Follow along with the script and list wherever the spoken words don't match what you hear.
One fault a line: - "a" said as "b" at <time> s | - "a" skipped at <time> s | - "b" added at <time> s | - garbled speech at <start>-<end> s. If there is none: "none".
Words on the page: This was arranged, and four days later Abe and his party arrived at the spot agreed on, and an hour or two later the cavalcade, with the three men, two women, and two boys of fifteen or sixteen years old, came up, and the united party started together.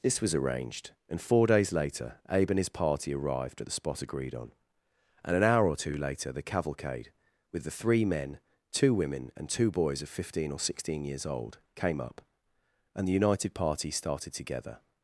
none